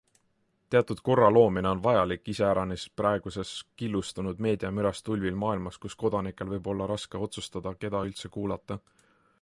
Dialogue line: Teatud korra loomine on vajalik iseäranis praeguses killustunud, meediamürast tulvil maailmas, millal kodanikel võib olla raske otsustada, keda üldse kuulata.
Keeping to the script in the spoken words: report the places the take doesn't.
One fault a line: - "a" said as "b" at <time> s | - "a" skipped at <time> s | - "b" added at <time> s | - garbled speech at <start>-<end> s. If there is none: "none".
- "millal" said as "kus" at 5.8 s